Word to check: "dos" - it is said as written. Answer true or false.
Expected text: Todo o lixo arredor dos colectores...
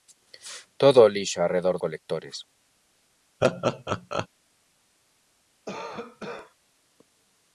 false